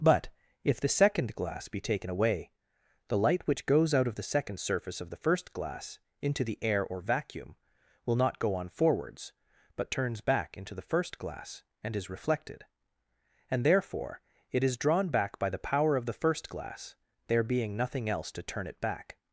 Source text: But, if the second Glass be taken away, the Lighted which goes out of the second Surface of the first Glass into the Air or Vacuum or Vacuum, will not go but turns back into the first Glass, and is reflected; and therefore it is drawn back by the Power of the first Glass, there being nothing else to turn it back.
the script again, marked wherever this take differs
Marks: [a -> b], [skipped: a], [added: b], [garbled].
But, if the second Glass be taken away, the [Lighted -> Light] which goes out of the second Surface of the first Glass into the Air or Vacuum [skipped: or Vacuum,] will not go [added: on forwards] but turns back into the first Glass, and is reflected; and therefore it is drawn back by the Power of the first Glass, there being nothing else to turn it back.